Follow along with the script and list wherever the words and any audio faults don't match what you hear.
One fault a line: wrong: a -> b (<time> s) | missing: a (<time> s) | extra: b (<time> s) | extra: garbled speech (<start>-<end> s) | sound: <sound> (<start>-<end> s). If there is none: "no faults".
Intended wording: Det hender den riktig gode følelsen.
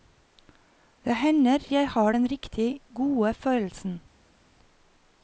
extra: jeg har (1.7 s)